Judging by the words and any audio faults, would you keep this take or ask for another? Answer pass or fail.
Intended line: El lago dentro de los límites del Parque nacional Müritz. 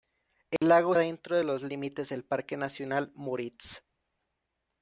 fail